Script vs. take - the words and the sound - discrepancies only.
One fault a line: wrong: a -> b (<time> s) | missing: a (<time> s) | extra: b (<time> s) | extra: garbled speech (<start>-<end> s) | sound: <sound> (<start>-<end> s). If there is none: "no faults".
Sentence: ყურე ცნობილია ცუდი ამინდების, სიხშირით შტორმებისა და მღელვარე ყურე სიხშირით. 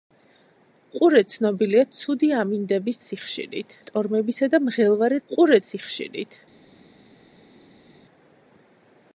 no faults